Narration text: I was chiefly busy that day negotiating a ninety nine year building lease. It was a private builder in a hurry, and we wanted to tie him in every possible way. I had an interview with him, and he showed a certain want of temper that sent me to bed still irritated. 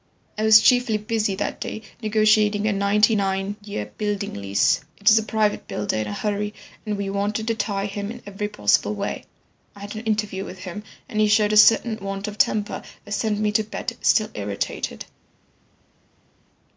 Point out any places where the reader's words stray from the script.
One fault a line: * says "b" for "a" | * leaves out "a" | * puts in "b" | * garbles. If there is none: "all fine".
all fine